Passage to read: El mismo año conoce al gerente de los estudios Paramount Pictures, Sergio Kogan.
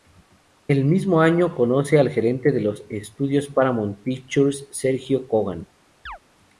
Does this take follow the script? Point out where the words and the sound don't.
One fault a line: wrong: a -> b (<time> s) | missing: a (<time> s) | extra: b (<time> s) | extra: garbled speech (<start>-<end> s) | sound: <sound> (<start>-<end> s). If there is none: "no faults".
sound: chirp (6.1-6.2 s)